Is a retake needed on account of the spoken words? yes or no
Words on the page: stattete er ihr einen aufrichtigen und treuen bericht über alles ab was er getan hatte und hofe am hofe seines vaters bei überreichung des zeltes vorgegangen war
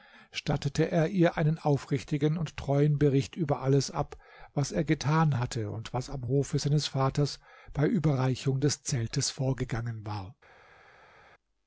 yes